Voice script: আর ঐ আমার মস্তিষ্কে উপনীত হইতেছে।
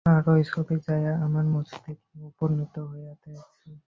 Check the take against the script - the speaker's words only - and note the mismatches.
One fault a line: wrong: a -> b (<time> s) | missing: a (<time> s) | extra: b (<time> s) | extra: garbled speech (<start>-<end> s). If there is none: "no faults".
extra: ছবি যাইয়া (0.5 s)